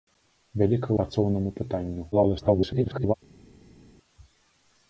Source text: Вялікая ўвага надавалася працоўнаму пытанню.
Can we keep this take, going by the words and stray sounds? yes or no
no